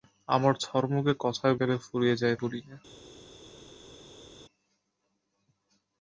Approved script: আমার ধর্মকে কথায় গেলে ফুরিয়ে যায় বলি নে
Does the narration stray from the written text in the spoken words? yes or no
no